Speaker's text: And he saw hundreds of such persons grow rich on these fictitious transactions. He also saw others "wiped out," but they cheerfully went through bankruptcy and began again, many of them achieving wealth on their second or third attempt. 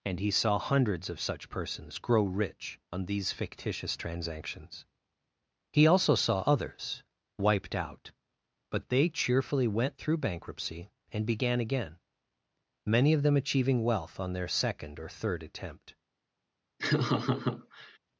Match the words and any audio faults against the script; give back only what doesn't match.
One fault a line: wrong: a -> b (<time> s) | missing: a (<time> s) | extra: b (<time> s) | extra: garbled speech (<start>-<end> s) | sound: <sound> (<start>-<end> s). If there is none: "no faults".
sound: laugh (16.8-18.0 s)